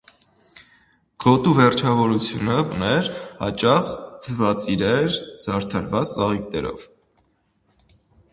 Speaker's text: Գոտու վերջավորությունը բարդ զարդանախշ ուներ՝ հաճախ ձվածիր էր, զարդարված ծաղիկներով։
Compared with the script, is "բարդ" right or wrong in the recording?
wrong